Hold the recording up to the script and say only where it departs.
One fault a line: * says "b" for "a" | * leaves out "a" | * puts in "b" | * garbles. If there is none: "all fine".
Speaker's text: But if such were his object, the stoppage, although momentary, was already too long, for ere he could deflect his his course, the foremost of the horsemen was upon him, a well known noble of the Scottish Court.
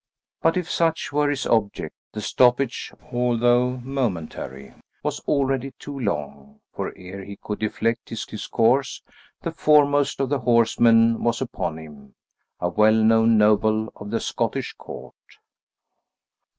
all fine